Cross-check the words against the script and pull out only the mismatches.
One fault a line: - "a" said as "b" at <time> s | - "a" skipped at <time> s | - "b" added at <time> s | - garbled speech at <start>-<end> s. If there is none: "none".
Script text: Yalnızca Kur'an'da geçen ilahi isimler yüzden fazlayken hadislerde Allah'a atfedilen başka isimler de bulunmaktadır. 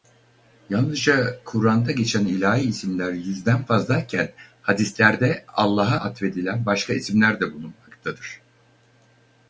none